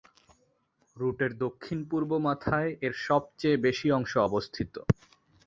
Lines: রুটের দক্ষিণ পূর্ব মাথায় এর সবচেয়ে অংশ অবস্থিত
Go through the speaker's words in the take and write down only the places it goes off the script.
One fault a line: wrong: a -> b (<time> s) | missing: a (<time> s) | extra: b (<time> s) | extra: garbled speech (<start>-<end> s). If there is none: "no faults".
extra: বেশি (3.7 s)